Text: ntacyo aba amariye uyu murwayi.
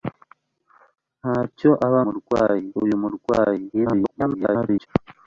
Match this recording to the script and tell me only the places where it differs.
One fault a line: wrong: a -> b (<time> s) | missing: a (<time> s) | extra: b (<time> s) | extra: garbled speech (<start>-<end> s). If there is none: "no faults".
wrong: amariye -> murwayi (2.0 s)
extra: garbled speech (3.7-4.9 s)